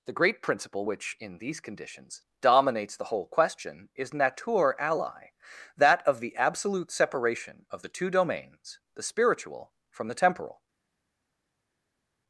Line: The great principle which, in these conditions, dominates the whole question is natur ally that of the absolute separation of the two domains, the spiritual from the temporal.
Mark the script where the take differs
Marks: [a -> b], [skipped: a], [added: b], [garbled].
The great principle which, in these conditions, dominates the whole question is natur ally that of the absolute separation of the two domains, the spiritual from the temporal.